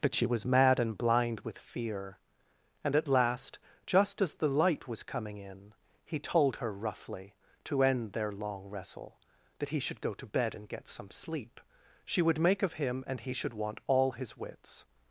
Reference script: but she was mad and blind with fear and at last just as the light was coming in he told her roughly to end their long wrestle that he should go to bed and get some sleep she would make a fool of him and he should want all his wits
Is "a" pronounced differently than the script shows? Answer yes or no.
yes